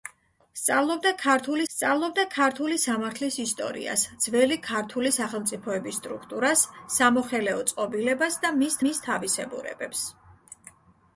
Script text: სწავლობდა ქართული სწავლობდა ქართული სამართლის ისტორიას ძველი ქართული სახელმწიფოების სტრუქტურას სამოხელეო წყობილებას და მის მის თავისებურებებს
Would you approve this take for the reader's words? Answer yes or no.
yes